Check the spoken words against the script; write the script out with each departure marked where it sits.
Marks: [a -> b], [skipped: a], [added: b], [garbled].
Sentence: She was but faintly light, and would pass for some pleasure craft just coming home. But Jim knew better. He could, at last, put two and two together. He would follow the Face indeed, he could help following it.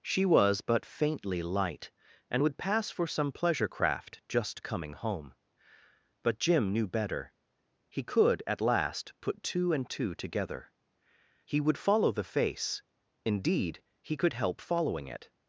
She was but faintly light, and would pass for some pleasure craft just coming home. But Jim knew better. He could, at last, put two and two together. He would follow the Face indeed, he could help following it.